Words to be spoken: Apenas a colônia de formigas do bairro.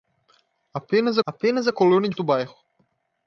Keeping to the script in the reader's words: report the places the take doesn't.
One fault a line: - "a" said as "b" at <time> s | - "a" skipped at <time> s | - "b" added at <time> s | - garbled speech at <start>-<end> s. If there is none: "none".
- "apenas" added at 1.3 s
- "formigas" skipped at 2.1 s